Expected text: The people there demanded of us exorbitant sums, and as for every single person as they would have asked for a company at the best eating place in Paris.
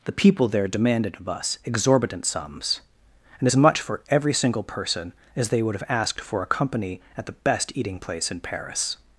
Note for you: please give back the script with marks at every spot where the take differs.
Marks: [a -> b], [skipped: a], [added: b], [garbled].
The people there demanded of us exorbitant sums, and as [added: much] for every single person as they would have asked for a company at the best eating place in Paris.